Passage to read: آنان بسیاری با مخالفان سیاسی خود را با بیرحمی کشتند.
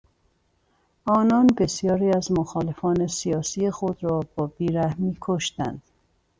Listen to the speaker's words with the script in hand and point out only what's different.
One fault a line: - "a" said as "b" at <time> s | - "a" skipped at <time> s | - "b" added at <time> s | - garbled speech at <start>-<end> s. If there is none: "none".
- "با" said as "از" at 2.1 s